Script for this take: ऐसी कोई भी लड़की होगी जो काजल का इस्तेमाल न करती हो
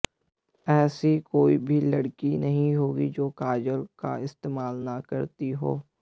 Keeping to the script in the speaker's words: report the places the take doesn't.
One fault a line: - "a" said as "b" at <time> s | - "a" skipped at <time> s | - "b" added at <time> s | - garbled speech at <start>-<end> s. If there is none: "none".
- "नहीं" added at 2.3 s